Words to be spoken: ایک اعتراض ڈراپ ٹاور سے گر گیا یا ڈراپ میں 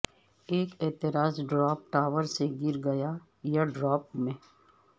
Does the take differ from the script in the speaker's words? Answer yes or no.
no